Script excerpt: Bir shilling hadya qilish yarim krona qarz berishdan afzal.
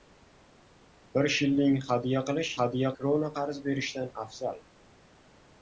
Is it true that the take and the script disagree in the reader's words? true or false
true